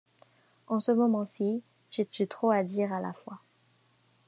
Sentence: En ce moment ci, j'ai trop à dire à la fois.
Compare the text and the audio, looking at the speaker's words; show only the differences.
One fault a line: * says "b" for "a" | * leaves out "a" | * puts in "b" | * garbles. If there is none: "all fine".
* puts in "j'ai"